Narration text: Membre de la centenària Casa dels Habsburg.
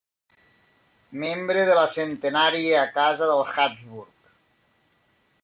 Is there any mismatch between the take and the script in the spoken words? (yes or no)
no